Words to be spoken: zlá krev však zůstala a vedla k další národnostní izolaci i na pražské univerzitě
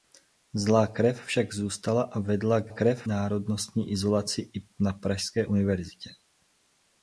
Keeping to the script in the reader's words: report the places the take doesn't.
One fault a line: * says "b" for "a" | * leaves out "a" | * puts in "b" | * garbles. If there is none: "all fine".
* says "krev" for "další"